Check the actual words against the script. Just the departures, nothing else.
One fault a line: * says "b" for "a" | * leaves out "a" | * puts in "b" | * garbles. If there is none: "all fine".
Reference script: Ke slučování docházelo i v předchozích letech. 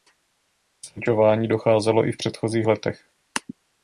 all fine